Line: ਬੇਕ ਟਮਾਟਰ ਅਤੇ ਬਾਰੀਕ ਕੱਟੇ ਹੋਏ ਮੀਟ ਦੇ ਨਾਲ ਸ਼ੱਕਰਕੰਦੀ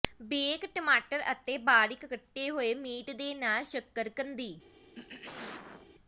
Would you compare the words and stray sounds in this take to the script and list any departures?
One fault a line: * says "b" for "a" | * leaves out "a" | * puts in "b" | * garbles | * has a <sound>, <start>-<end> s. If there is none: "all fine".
* has a throat clearing, 5.0-5.9 s